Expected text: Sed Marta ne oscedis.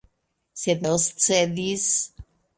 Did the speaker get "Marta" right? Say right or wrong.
wrong